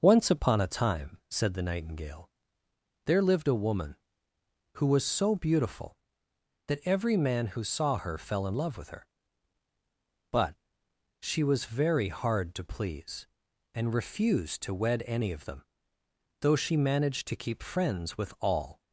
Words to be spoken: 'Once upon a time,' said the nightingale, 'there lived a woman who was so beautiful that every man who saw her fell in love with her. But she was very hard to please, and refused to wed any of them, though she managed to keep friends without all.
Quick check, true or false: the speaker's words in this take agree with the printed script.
false